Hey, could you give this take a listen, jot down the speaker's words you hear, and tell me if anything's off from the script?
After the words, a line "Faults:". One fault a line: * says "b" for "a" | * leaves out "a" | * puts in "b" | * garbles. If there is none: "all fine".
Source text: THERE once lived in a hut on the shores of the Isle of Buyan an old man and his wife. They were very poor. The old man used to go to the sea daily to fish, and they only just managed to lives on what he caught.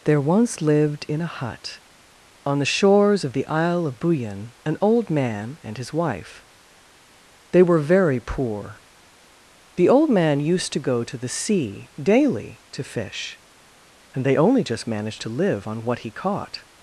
THERE once lived in a hut on the shores of the Isle of Buyan an old man and his wife. They were very poor. The old man used to go to the sea daily to fish, and they only just managed to live on what he caught.
Faults:
* says "live" for "lives"